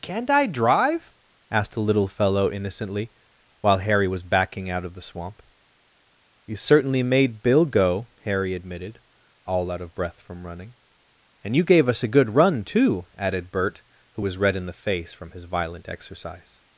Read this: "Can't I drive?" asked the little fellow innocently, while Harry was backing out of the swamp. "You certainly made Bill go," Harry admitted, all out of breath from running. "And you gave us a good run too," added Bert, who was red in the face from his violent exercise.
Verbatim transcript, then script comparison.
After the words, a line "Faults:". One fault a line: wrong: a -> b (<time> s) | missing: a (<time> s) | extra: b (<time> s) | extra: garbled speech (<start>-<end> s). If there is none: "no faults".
"Can't I drive?" asked the little fellow innocently, while Harry was backing out of the swamp. "You certainly made Bill go," Harry admitted, all out of breath from running. "And you gave us a good run too," added Bert, who was red in the face from his violent exercise.
Faults:
no faults